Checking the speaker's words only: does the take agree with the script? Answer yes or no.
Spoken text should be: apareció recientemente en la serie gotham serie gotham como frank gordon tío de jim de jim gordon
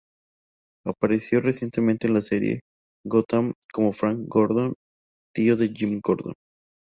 no